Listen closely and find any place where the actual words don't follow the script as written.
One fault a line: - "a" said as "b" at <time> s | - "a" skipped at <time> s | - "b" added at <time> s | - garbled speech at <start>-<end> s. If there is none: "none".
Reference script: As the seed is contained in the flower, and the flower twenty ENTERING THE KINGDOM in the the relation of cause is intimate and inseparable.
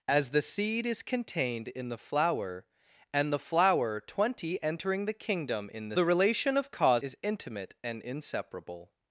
none